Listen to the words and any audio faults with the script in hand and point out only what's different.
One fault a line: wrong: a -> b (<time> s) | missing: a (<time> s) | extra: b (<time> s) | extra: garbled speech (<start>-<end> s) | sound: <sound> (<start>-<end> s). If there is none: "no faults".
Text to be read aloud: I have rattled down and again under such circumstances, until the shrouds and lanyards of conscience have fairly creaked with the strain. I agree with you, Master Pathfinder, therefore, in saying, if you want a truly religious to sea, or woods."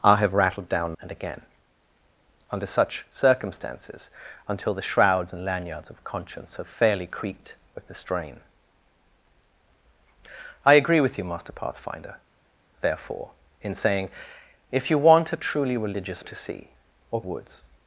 no faults